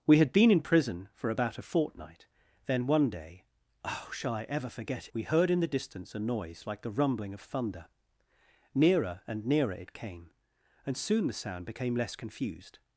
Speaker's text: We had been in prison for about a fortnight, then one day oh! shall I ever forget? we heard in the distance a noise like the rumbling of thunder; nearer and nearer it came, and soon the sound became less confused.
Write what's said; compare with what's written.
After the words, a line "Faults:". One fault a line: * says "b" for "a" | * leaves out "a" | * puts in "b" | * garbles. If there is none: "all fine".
We had been in prison for about a fortnight, then one day oh! shall I ever forget? we heard in the distance a noise like the rumbling of thunder; nearer and nearer it came, and soon the sound became less confused.
Faults:
all fine